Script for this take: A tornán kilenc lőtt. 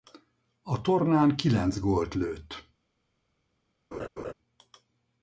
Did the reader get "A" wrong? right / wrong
right